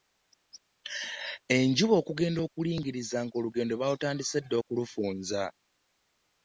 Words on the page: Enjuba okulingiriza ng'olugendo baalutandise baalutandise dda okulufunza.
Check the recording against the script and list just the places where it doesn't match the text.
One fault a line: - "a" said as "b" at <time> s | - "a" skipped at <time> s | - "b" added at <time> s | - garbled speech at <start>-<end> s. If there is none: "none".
- "okugenda" added at 2.0 s
- "baalutandise" skipped at 4.4 s